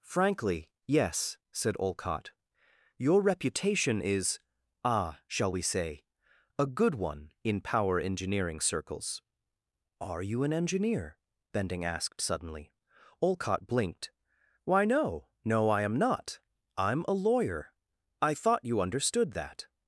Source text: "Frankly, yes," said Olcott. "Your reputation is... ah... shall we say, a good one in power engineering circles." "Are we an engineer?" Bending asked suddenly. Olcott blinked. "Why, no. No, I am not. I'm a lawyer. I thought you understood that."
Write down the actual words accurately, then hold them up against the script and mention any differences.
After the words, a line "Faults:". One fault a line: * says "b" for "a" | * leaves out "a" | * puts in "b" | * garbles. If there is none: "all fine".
"Frankly, yes," said Olcott. "Your reputation is... ah... shall we say, a good one in power engineering circles." "Are you an engineer?" Bending asked suddenly. Olcott blinked. "Why, no. No, I am not. I'm a lawyer. I thought you understood that."
Faults:
* says "you" for "we"